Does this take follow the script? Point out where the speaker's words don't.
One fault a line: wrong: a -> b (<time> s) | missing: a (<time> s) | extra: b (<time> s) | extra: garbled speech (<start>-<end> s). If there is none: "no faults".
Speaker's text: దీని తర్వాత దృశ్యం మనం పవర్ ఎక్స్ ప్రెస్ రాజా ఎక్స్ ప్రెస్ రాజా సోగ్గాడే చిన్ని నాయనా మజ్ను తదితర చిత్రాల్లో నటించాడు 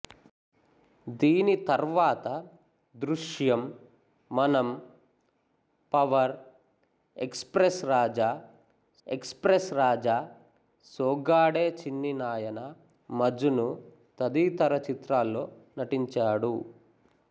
no faults